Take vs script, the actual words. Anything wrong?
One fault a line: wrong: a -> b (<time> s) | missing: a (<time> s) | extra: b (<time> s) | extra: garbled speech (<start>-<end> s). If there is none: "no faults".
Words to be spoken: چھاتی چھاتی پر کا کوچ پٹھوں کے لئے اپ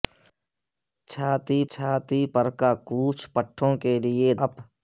no faults